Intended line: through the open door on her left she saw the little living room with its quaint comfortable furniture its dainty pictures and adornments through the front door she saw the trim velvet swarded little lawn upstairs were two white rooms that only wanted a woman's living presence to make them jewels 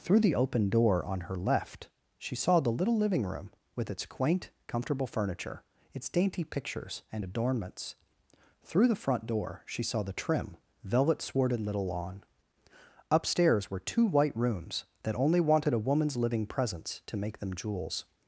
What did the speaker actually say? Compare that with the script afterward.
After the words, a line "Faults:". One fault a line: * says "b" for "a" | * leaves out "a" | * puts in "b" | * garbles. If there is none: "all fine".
through the open door on her left she saw the little living room with its quaint comfortable furniture its dainty pictures and adornments through the front door she saw the trim velvet swarded little lawn upstairs were two white rooms that only wanted a woman's living presence to make them jewels
Faults:
all fine